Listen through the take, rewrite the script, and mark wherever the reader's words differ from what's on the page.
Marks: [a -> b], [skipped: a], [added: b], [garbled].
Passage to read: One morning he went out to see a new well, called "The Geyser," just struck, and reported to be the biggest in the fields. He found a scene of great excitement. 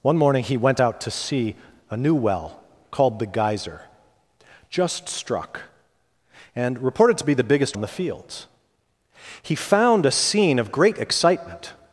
One morning he went out to see a new well, called "The Geyser," just struck, and reported to be the biggest in the fields. He found a scene of great excitement.